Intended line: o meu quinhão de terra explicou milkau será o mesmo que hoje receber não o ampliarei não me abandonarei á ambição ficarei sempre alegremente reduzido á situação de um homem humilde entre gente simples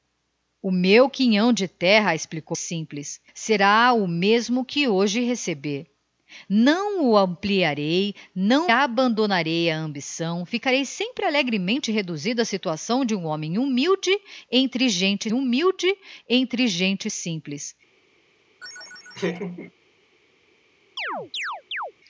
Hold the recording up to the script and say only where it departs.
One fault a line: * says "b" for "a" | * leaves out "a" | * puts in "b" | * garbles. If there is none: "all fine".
* says "simples" for "milkau"
* leaves out "me"
* puts in "humilde entre gente"